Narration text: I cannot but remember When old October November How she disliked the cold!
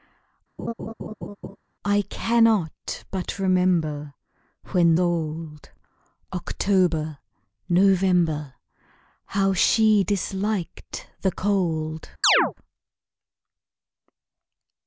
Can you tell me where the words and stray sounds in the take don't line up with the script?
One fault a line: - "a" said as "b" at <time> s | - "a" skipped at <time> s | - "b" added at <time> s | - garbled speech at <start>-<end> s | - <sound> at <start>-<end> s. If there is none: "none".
- laugh at 0.6-1.6 s
- chirp at 12.2-12.5 s